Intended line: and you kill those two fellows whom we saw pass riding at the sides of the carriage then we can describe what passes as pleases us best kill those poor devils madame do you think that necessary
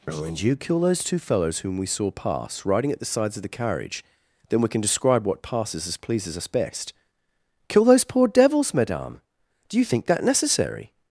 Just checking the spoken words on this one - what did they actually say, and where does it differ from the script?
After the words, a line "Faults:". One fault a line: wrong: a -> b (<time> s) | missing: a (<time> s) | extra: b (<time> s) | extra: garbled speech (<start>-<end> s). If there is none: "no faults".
and you kill those two fellows whom we saw pass riding at the sides of the carriage then we can describe what passes as pleases us best kill those poor devils madame do you think that necessary
Faults:
no faults